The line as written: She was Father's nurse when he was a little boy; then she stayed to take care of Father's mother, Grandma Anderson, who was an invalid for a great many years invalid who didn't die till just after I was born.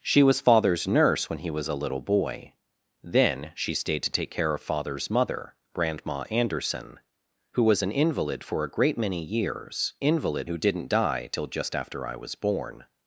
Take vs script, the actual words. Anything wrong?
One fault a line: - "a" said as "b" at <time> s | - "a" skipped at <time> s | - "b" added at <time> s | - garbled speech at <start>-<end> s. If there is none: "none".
none